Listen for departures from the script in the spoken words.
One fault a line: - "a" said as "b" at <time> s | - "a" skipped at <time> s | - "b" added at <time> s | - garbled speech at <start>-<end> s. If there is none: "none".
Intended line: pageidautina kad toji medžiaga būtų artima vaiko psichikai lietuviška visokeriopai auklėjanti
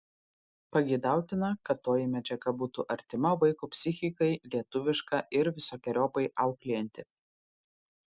- "ir" added at 5.4 s